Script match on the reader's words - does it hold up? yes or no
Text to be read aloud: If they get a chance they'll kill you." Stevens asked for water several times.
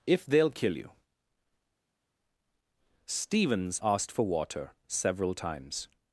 no